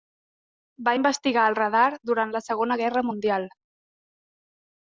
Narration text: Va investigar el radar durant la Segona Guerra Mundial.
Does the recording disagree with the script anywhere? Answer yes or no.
no